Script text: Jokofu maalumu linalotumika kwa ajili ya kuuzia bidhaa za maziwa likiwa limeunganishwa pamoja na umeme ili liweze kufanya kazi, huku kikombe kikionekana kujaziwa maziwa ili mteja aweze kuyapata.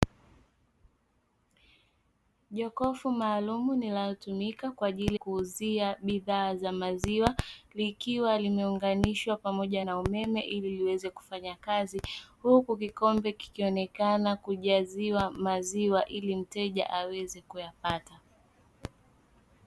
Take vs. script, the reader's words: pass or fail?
fail